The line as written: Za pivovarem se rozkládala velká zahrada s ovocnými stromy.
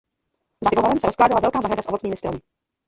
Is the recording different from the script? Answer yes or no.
no